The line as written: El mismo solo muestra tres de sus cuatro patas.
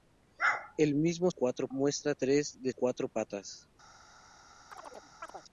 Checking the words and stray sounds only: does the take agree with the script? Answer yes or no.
no